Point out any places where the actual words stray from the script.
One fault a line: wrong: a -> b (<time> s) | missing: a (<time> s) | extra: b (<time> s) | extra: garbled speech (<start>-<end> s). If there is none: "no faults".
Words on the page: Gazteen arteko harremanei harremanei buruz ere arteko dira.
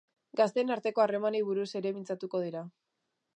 missing: harremanei (1.4 s)
wrong: arteko -> mintzatuko (2.0 s)